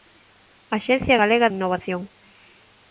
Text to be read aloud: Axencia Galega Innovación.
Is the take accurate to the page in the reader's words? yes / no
yes